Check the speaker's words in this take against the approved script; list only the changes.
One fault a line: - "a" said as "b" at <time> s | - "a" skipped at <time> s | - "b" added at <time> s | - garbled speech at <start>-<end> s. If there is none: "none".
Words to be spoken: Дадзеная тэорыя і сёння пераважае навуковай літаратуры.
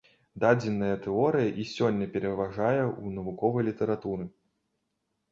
- "ў" added at 2.9 s